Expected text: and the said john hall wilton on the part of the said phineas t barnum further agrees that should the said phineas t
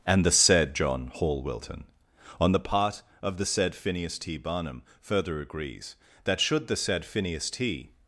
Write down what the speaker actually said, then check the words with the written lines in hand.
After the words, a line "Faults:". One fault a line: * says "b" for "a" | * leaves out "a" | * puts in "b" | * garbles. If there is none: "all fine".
and the said john hall wilton on the part of the said phineas t barnum further agrees that should the said phineas t
Faults:
all fine